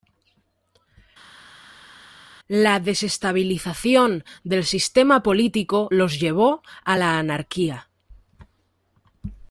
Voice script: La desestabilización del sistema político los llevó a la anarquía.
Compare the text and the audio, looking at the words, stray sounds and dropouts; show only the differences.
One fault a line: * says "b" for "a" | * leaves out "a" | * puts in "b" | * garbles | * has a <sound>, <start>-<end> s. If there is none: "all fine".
all fine